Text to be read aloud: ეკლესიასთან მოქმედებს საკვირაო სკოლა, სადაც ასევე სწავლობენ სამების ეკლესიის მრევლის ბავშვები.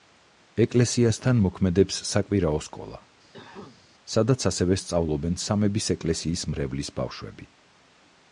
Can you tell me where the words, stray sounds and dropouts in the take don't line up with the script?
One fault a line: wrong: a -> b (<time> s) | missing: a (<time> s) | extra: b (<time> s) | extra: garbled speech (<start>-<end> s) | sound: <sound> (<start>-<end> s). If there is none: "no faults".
sound: cough (3.3-3.9 s)